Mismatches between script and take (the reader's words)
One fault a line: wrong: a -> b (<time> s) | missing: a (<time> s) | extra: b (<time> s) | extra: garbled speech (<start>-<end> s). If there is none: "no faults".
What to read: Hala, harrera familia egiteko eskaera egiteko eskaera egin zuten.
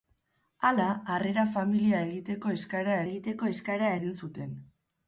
no faults